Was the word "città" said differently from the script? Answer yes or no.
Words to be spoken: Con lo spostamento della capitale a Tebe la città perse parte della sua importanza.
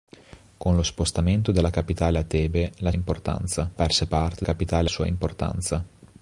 yes